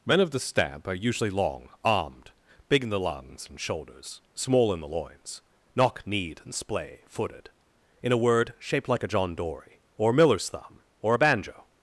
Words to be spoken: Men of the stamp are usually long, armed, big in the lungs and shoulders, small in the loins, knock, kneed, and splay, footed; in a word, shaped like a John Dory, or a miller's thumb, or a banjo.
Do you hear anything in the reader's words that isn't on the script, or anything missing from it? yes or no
no